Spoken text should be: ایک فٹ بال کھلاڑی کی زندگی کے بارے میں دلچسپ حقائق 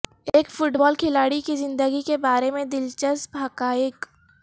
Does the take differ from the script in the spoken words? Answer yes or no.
no